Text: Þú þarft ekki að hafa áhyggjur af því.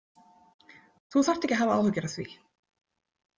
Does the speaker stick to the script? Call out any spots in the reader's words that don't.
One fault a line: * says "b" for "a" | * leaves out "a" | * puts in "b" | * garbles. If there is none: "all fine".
all fine